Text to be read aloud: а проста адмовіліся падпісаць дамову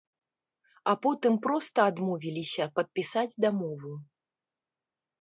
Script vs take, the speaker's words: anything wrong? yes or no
yes